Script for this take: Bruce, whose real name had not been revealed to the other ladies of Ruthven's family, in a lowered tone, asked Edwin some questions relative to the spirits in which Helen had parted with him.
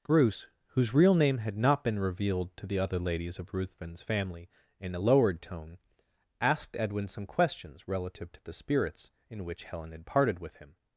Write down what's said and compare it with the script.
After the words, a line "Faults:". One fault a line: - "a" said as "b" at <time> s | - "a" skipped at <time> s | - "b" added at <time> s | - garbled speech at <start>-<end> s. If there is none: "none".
Bruce, whose real name had not been revealed to the other ladies of Ruthven's family, in a lowered tone, asked Edwin some questions relative to the spirits in which Helen had parted with him.
Faults:
none